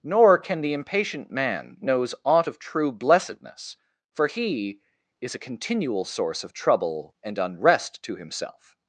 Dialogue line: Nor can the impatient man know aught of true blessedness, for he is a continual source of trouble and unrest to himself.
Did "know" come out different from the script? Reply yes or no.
yes